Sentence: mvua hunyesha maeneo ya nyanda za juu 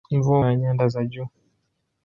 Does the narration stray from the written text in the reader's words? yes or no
yes